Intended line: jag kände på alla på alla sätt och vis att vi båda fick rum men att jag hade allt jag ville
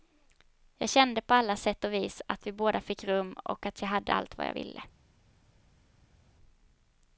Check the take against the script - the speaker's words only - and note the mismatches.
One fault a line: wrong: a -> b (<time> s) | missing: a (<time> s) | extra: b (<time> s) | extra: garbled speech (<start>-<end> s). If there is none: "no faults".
missing: på alla (1.6 s)
wrong: men -> och (3.3 s)
extra: vad (4.4 s)